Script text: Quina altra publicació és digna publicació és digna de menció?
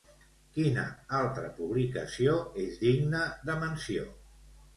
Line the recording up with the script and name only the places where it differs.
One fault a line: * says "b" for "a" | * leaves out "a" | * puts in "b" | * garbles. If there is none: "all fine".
* leaves out "publicació és digna"